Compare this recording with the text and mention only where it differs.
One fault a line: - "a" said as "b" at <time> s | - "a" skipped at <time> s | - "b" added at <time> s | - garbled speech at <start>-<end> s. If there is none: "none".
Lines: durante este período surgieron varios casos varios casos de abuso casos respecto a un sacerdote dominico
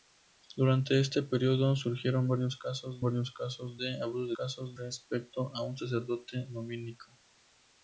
none